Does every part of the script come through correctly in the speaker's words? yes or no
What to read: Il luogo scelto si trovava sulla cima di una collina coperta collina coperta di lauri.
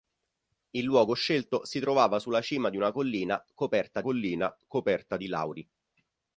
yes